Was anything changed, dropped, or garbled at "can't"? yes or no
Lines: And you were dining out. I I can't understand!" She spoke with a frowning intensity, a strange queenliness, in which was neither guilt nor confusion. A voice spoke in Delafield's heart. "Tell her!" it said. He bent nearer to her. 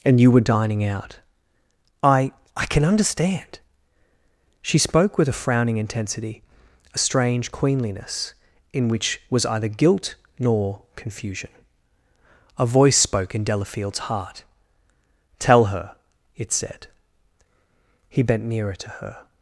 yes